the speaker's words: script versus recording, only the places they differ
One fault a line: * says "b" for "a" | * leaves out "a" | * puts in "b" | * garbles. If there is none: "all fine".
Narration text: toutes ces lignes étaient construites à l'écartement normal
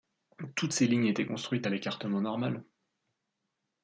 all fine